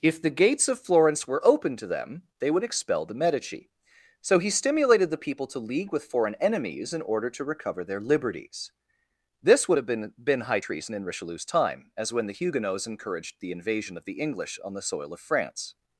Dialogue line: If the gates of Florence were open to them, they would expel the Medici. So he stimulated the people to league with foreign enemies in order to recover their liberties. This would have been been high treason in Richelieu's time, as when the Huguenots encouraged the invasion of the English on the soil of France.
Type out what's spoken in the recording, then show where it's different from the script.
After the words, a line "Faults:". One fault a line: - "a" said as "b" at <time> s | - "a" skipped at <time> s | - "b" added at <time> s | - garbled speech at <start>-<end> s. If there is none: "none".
If the gates of Florence were open to them, they would expel the Medici. So he stimulated the people to league with foreign enemies in order to recover their liberties. This would have been been high treason in Richelieu's time, as when the Huguenots encouraged the invasion of the English on the soil of France.
Faults:
none